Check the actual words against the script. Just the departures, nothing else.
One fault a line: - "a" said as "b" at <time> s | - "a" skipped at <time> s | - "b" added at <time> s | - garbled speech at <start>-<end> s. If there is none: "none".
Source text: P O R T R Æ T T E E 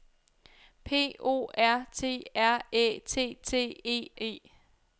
none